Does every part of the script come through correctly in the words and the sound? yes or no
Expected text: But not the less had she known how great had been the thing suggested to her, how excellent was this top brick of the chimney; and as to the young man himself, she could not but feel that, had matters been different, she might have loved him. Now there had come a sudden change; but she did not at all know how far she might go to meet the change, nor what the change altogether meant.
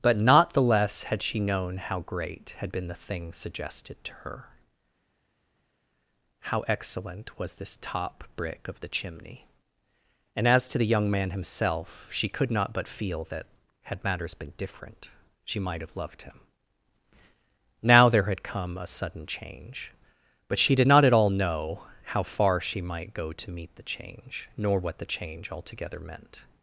yes